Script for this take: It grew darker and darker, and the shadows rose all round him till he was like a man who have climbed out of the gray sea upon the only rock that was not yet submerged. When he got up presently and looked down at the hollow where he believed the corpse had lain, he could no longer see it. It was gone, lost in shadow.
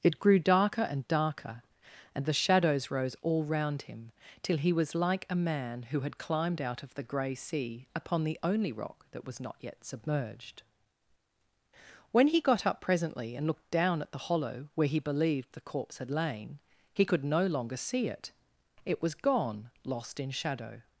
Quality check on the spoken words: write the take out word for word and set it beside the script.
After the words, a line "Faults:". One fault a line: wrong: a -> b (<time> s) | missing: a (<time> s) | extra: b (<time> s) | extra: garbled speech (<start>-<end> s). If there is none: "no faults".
It grew darker and darker, and the shadows rose all round him till he was like a man who had climbed out of the gray sea upon the only rock that was not yet submerged. When he got up presently and looked down at the hollow where he believed the corpse had lain, he could no longer see it. It was gone, lost in shadow.
Faults:
wrong: have -> had (6.0 s)